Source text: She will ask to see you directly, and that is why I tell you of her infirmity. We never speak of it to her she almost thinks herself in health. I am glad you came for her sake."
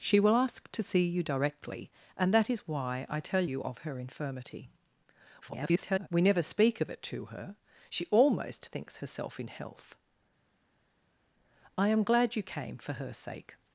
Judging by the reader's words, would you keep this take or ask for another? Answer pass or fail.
fail